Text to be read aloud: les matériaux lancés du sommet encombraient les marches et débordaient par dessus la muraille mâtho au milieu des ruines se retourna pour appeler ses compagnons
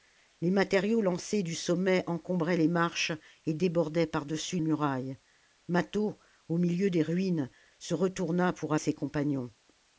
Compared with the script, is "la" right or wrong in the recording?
wrong